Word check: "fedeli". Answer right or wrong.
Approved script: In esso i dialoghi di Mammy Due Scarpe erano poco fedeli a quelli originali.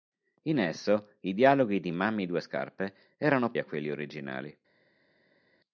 wrong